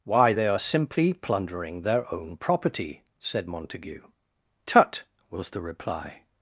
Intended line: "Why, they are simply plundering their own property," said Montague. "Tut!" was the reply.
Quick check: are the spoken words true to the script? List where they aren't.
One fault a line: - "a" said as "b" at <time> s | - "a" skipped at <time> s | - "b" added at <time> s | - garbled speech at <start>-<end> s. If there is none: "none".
none